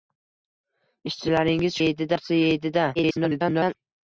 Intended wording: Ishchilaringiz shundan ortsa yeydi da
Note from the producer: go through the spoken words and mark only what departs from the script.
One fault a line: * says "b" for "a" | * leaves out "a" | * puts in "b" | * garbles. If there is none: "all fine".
* says "yeydi" for "shundan"
* garbles